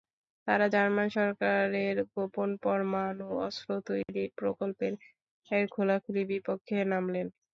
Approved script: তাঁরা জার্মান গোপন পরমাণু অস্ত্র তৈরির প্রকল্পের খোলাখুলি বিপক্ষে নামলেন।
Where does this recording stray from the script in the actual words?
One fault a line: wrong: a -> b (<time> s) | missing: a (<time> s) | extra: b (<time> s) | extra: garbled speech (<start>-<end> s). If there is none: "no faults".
extra: সরকারের (1.1 s)